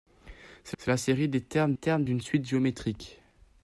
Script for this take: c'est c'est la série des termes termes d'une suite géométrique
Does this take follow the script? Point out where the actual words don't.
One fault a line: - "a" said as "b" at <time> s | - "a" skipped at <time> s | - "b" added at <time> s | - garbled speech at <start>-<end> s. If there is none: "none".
none